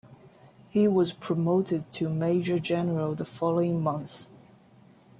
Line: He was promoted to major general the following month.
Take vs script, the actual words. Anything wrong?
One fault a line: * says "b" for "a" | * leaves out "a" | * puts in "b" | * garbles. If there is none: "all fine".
all fine